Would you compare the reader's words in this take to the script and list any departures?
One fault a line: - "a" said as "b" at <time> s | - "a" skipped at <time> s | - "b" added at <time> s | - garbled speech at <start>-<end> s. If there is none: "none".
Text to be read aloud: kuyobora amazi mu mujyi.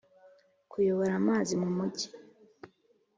none